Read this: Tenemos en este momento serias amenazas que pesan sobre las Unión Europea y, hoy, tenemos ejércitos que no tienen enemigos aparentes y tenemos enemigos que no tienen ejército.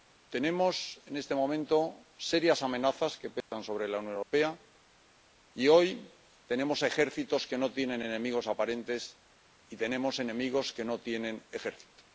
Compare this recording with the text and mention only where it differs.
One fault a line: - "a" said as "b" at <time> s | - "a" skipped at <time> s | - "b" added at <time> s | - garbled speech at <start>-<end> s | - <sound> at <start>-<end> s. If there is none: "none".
- dropout at 3.4-3.5 s
- "las" said as "la" at 3.9 s
- dropout at 4.2-4.3 s